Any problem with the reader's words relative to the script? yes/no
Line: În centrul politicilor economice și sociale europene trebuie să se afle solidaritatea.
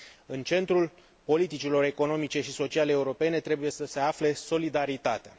no